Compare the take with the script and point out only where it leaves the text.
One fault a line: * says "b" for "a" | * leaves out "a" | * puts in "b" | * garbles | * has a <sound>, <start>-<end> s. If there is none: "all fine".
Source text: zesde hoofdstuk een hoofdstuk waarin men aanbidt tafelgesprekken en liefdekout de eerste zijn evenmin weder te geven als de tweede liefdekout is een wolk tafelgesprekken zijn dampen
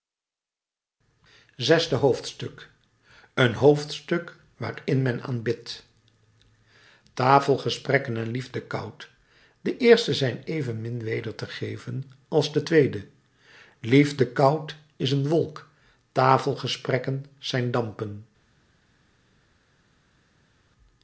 all fine